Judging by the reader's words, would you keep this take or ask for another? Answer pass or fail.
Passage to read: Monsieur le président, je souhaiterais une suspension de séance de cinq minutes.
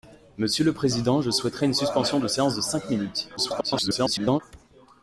fail